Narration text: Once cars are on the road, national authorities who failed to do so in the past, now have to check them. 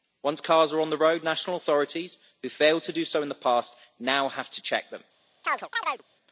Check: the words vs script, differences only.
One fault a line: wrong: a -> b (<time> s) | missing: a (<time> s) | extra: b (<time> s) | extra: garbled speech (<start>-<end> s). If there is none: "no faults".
no faults